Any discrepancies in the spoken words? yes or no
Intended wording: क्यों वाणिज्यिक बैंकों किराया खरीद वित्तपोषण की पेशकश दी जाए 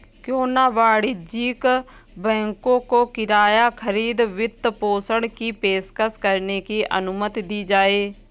yes